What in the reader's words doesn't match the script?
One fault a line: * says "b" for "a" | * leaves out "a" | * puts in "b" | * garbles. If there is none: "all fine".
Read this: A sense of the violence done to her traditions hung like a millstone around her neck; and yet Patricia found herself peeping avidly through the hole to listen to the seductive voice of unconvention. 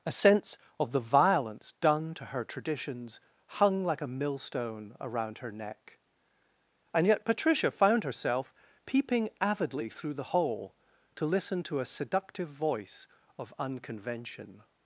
* says "a" for "the"